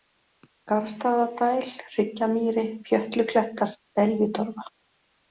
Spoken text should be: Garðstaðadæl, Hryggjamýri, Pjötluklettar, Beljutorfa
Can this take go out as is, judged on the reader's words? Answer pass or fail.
pass